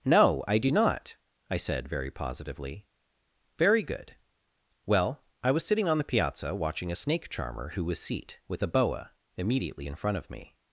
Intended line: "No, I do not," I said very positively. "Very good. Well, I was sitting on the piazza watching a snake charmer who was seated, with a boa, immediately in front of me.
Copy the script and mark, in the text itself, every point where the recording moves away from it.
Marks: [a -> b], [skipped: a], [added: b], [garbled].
"No, I do not," I said very positively. "Very good. Well, I was sitting on the piazza watching a snake charmer who was [seated, -> seat] with a boa, immediately in front of me.